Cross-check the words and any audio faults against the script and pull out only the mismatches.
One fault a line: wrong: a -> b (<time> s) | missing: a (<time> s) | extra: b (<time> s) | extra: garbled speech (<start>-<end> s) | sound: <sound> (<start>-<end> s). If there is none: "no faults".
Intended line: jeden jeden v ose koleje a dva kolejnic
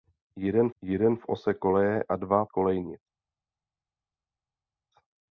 no faults